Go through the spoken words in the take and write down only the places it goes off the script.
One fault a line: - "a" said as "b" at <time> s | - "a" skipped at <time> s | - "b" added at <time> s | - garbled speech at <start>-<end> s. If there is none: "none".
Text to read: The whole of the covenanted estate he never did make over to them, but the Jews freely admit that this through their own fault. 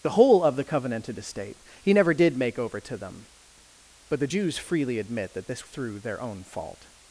none